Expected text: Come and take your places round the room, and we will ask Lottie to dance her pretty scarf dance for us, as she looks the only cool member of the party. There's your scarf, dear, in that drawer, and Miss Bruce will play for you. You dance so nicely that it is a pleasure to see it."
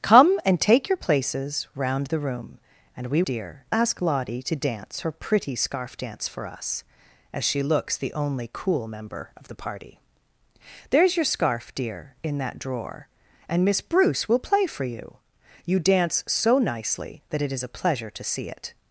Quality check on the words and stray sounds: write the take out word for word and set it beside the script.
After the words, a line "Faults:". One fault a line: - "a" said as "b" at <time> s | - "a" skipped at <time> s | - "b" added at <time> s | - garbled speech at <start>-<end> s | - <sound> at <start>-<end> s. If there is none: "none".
Come and take your places round the room, and we dear ask Lottie to dance her pretty scarf dance for us, as she looks the only cool member of the party. There's your scarf, dear, in that drawer, and Miss Bruce will play for you. You dance so nicely that it is a pleasure to see it."
Faults:
- "will" said as "dear" at 3.2 s